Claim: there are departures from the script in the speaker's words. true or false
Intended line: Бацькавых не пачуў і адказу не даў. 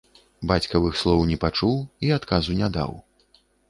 true